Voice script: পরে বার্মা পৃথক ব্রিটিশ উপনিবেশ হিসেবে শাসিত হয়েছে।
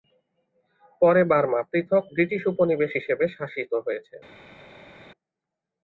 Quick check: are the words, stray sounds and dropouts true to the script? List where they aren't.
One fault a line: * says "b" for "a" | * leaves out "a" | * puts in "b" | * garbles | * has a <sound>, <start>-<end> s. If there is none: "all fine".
all fine